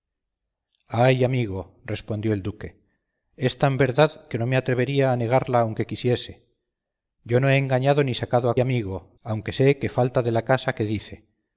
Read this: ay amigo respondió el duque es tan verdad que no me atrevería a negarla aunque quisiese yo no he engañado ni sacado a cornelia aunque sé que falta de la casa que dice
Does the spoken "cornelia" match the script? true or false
false